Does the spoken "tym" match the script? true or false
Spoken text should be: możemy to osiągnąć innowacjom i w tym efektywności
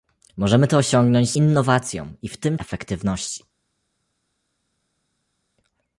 true